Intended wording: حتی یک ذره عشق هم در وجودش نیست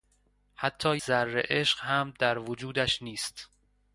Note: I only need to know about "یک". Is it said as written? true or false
false